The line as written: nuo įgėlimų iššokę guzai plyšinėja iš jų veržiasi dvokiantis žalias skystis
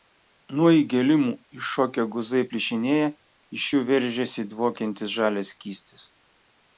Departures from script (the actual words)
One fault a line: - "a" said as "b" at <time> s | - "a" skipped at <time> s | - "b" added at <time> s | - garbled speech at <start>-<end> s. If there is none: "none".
none